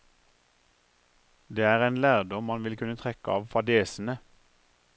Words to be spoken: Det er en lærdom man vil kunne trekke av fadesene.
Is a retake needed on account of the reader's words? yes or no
no